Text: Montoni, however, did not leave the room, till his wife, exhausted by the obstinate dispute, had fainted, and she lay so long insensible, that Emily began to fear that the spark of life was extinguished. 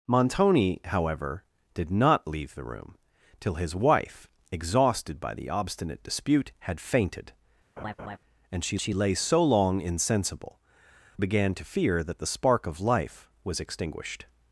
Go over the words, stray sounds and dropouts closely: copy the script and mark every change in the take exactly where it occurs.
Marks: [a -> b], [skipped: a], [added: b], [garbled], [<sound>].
Montoni, however, did not leave the room, till his wife, exhausted by the obstinate dispute, had fainted, [laugh] and she [added: she] lay so long insensible, [skipped: that Emily] began to fear that the spark of life was extinguished.